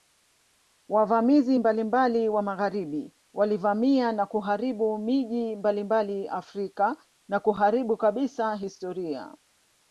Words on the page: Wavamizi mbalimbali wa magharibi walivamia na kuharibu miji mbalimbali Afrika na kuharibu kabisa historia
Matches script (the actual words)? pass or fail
pass